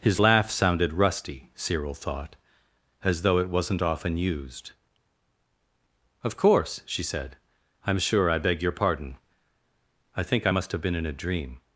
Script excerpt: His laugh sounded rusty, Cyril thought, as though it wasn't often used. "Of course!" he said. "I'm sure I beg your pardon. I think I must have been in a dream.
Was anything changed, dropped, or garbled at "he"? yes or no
yes